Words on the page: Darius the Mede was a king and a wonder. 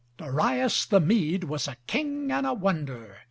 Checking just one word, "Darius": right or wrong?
right